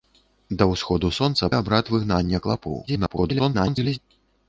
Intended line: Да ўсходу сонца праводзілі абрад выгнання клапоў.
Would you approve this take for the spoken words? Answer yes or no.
no